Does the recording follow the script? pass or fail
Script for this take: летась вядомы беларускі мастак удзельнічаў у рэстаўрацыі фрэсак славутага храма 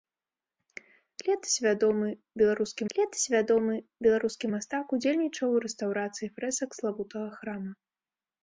fail